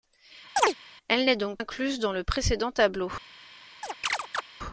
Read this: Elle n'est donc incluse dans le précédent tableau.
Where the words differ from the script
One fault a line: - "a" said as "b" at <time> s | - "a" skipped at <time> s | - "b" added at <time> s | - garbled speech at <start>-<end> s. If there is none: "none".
none